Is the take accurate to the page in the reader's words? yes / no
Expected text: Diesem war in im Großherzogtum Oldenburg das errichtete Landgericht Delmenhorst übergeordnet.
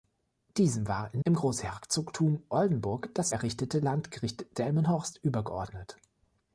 yes